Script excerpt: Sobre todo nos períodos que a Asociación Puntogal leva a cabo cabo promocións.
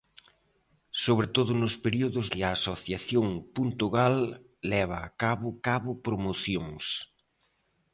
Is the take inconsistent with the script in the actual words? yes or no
no